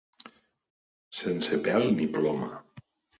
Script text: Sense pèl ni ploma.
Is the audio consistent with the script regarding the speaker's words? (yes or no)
yes